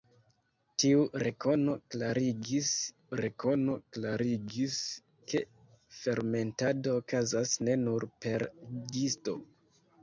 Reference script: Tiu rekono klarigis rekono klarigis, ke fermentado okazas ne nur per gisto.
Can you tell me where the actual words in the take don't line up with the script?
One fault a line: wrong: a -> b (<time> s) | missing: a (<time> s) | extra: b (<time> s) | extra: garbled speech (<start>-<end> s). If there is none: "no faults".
no faults